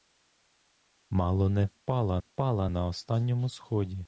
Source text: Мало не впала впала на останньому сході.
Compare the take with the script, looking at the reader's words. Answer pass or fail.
pass